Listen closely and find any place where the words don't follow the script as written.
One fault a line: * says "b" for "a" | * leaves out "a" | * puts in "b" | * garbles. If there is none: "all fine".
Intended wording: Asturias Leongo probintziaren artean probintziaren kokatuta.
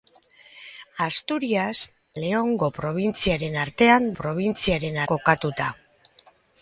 all fine